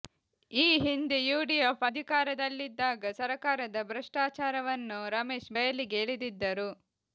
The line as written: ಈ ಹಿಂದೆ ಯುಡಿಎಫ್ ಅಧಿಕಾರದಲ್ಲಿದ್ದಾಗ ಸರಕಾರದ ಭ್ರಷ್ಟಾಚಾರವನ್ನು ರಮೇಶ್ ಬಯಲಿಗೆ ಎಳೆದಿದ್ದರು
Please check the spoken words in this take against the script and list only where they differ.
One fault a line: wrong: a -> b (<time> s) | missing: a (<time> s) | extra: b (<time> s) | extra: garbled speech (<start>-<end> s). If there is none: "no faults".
no faults